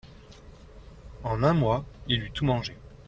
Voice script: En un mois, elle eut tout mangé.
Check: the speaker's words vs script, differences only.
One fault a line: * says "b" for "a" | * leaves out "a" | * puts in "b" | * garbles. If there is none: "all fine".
* says "il" for "elle"